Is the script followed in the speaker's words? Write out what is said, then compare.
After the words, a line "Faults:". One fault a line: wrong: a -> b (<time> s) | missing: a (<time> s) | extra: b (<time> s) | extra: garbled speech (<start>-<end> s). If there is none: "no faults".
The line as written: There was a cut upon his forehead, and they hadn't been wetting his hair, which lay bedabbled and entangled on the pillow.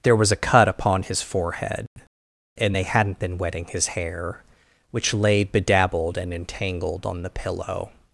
There was a cut upon his forehead, and they hadn't been wetting his hair, which lay bedabbled and entangled on the pillow.
Faults:
no faults